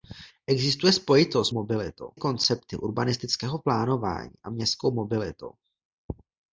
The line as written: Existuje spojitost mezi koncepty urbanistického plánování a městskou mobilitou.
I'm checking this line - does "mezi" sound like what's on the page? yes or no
no